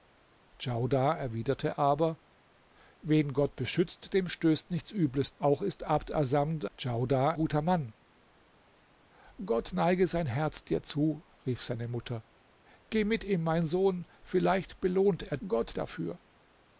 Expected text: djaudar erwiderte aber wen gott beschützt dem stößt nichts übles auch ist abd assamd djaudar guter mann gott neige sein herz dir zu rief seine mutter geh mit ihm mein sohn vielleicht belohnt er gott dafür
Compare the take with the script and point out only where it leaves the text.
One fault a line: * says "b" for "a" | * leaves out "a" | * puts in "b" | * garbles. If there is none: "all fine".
all fine